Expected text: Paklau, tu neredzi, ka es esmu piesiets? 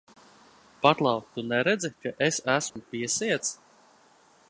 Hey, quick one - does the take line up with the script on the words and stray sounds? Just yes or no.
no